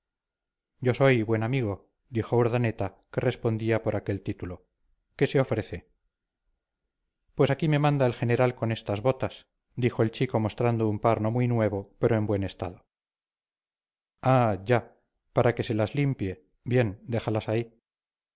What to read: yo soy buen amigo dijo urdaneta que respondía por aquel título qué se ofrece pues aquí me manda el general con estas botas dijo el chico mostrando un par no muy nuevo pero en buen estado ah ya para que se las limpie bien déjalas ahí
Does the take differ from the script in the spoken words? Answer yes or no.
no